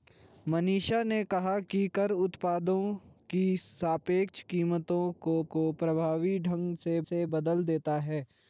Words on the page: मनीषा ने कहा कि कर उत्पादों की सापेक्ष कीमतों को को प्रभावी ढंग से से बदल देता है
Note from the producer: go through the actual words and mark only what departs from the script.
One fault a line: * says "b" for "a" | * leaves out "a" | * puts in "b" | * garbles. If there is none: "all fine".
all fine